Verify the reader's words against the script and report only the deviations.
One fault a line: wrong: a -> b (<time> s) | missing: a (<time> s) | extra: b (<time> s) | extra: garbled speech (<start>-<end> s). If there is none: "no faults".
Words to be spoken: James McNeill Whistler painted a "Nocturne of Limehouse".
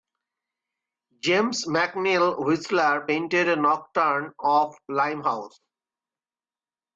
no faults